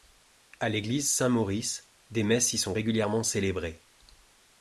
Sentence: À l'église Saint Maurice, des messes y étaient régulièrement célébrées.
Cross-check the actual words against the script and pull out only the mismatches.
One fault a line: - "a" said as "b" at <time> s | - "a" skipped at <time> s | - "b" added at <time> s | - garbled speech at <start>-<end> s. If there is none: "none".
- "étaient" said as "sont" at 2.6 s